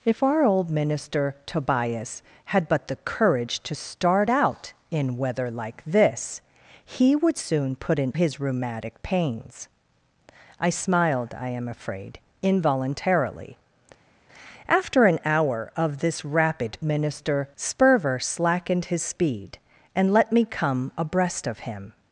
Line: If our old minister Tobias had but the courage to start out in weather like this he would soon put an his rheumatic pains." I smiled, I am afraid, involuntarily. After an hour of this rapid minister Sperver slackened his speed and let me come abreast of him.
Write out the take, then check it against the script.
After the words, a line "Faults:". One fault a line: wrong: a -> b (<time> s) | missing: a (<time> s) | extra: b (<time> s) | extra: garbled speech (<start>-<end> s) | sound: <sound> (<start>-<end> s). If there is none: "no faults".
If our old minister Tobias had but the courage to start out in weather like this he would soon put an his rheumatic pains." I smiled, I am afraid, involuntarily. After an hour of this rapid minister Sperver slackened his speed and let me come abreast of him.
Faults:
no faults